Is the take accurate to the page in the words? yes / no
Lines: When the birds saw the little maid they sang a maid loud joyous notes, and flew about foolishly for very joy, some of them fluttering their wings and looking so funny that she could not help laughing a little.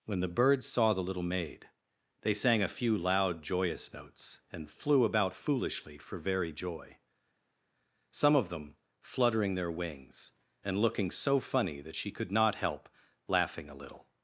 no